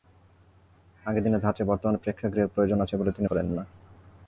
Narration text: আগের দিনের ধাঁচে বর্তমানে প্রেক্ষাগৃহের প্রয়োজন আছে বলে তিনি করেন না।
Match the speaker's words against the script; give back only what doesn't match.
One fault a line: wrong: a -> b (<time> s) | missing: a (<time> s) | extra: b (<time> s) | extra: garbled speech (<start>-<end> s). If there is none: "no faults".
no faults